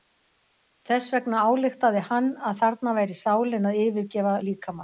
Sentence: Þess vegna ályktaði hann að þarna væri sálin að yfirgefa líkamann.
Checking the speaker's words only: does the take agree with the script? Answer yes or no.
yes